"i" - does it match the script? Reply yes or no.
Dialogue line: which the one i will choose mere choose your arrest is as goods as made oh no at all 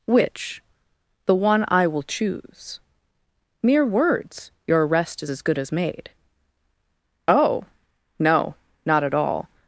yes